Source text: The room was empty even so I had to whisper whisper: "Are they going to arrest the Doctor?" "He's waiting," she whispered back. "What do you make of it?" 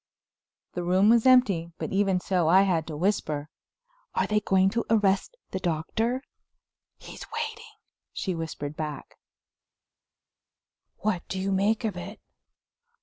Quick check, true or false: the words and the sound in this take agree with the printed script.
false